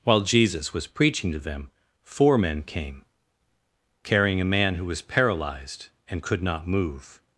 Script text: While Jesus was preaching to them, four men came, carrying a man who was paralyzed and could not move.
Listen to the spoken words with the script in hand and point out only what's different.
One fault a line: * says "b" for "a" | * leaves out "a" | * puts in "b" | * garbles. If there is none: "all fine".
all fine